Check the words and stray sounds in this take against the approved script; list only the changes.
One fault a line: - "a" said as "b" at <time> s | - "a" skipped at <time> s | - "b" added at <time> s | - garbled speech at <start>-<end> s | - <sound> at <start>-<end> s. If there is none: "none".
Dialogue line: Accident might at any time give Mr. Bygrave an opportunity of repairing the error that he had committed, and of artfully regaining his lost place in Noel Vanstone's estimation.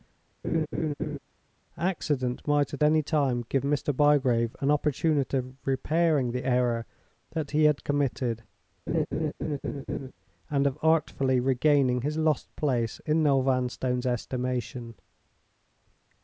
- laugh at 0.4-1.2 s
- laugh at 8.9-10.1 s